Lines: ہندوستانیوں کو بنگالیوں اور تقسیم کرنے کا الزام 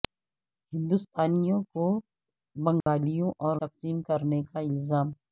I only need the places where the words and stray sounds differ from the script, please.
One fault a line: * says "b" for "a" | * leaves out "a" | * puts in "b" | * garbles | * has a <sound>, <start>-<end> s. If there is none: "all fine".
* has a dropout, 2.8-2.9 s